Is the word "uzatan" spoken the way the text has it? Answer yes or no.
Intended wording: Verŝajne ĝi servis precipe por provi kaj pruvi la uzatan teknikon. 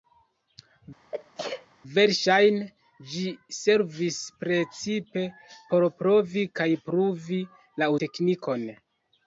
no